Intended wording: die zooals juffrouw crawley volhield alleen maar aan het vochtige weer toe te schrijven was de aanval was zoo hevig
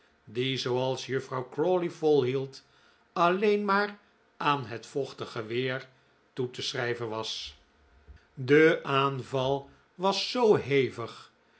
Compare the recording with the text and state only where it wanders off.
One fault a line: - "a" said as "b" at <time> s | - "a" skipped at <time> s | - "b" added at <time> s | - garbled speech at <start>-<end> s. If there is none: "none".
none